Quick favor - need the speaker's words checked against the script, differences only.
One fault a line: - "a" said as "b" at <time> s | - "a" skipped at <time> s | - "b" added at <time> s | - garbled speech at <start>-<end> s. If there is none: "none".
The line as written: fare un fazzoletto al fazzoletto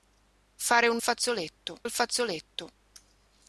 none